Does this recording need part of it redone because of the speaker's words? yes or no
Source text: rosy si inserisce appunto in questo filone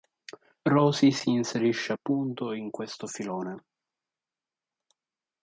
no